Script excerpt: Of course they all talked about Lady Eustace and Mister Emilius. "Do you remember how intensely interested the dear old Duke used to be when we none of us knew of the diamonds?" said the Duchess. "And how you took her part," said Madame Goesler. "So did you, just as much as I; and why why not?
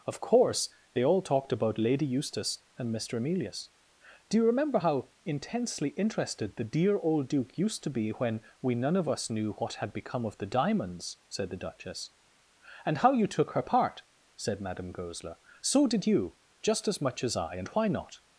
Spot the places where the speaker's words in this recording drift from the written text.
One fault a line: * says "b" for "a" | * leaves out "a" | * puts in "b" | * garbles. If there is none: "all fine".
* puts in "what had become"
* leaves out "why"